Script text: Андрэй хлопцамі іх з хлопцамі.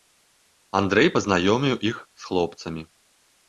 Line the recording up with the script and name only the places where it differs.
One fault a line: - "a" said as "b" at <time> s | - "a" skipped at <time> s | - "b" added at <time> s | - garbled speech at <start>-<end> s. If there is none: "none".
- "хлопцамі" said as "пазнаёміў" at 1.2 s